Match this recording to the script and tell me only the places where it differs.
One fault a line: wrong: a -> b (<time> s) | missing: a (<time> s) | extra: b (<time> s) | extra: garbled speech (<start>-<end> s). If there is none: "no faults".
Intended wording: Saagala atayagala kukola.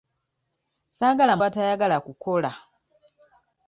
no faults